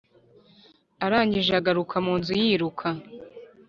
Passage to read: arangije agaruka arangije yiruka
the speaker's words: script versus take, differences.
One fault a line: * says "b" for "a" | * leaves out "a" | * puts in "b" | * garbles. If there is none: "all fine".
* says "munzu" for "arangije"